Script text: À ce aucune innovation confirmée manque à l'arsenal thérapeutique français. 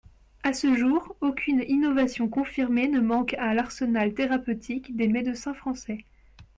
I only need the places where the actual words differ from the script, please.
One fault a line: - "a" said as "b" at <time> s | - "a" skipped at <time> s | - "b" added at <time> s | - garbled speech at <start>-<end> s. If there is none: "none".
- "jour" added at 0.8 s
- "ne" added at 2.9 s
- "des médecins" added at 4.9 s